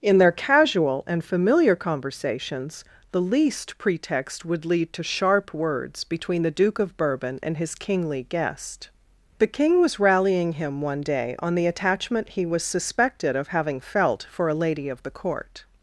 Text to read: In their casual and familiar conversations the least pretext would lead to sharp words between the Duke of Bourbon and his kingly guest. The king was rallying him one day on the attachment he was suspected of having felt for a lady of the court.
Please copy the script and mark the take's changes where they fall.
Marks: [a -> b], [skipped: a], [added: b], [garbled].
In their casual and familiar conversations the least pretext would lead to sharp words between the Duke of Bourbon and his kingly guest. The king was rallying him one day on the attachment he was suspected of having felt for a lady of the court.